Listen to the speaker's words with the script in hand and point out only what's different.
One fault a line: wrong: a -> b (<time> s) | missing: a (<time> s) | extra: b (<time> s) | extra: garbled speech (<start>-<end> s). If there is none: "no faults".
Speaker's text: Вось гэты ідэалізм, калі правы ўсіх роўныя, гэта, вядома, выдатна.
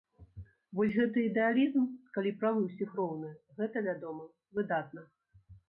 no faults